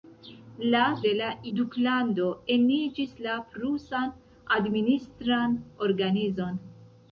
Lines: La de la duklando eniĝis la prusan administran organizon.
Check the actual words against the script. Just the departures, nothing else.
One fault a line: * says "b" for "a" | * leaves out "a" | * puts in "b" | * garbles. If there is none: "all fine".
all fine